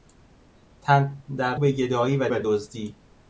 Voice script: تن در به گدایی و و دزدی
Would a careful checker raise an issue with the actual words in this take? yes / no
no